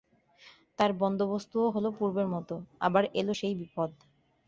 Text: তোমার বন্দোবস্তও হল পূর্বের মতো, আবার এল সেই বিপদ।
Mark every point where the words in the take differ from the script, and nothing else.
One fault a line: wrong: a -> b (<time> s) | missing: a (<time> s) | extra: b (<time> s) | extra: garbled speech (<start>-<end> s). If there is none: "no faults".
wrong: তোমার -> তার (0.8 s)